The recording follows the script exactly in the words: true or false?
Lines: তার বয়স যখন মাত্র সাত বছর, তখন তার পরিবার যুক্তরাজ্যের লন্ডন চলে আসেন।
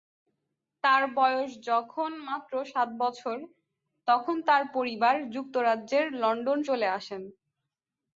true